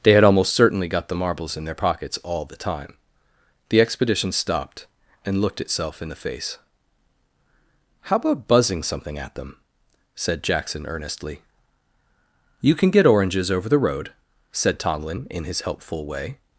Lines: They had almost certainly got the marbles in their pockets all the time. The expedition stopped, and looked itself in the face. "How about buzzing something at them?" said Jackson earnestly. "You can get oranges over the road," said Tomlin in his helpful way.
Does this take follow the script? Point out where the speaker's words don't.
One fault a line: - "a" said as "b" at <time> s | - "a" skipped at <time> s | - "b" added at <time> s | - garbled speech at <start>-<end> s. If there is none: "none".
none